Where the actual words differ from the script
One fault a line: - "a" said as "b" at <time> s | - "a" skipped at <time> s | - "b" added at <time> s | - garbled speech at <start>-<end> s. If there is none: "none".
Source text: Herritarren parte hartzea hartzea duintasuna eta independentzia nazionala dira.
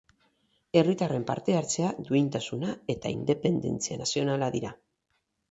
- "hartzea" skipped at 1.9 s